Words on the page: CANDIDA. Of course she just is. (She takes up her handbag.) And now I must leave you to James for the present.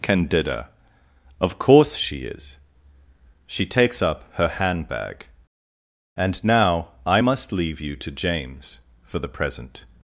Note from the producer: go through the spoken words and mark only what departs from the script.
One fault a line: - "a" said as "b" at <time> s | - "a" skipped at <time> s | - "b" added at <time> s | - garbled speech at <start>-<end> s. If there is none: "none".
- "just" skipped at 2.2 s